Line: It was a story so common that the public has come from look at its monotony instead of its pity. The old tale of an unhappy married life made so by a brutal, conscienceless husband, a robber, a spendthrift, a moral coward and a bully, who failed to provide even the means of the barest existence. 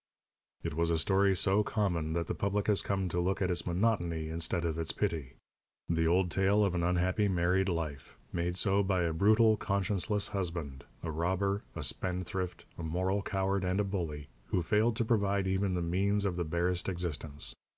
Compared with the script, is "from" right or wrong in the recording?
wrong